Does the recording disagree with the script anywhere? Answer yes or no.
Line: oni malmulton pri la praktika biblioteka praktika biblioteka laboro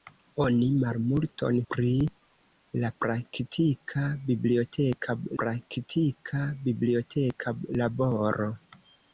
no